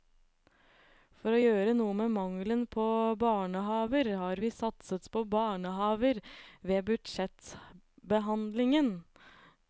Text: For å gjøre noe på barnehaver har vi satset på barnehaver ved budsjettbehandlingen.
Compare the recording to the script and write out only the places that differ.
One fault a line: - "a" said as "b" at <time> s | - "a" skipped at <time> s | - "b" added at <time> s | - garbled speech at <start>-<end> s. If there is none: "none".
- "med mangelen" added at 2.0 s